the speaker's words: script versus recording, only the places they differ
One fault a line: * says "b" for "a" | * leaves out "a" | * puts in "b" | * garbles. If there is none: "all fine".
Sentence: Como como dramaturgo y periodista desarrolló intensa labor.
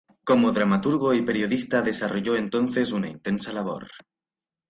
* leaves out "como"
* puts in "entonces una"